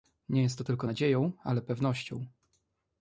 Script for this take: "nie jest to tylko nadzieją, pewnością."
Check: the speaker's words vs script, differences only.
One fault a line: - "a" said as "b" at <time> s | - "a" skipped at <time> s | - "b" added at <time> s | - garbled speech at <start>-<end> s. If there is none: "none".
- "ale" added at 1.4 s